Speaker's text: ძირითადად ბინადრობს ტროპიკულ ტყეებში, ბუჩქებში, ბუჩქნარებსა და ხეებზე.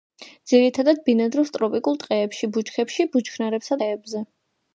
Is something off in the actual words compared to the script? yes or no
yes